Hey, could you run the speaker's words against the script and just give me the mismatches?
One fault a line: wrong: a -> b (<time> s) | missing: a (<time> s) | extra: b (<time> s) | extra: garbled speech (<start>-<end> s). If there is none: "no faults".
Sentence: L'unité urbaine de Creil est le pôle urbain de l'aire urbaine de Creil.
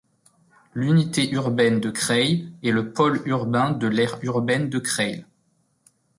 no faults